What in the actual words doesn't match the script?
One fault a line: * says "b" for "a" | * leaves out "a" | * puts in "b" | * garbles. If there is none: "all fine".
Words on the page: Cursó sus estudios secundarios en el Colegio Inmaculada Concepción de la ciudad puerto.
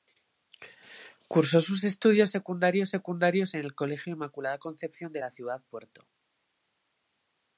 * puts in "secundarios"